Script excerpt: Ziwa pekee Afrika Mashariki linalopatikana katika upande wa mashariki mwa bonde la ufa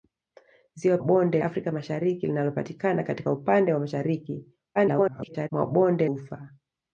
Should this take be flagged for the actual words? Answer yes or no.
yes